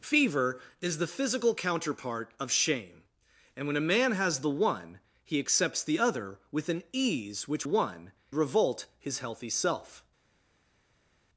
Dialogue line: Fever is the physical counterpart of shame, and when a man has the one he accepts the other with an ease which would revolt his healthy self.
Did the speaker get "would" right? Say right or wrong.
wrong